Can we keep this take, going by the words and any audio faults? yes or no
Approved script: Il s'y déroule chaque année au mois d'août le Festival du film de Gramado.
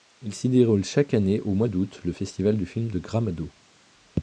yes